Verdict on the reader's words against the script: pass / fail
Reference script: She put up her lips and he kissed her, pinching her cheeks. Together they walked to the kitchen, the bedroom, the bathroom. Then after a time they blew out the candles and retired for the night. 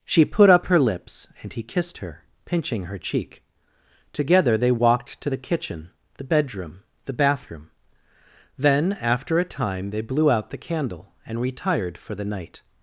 fail